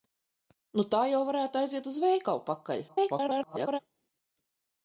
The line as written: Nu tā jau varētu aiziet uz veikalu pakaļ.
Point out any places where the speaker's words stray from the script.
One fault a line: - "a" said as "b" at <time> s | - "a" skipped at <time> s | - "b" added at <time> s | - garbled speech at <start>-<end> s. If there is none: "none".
- garbled speech at 2.9-3.8 s